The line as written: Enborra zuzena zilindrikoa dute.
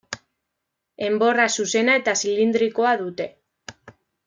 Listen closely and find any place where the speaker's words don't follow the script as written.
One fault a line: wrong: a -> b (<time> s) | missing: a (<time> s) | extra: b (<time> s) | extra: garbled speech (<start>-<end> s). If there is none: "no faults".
extra: eta (2.0 s)